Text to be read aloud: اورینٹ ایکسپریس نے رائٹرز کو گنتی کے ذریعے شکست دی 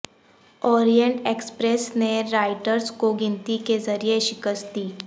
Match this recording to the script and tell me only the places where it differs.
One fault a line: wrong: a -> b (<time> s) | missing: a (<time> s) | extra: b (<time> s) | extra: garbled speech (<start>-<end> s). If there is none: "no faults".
no faults